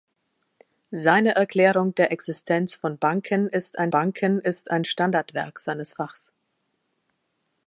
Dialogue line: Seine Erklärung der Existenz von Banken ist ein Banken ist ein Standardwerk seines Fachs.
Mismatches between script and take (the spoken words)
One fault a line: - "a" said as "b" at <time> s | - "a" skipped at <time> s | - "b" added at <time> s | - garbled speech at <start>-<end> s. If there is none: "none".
none